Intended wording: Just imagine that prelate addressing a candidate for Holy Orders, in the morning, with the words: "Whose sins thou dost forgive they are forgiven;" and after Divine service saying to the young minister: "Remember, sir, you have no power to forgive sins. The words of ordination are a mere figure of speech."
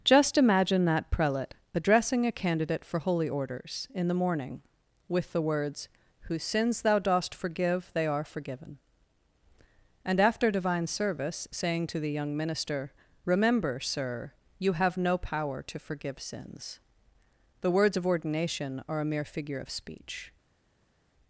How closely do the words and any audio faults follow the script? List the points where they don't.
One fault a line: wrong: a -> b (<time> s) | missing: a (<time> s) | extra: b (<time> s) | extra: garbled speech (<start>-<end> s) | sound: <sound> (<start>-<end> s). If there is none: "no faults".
no faults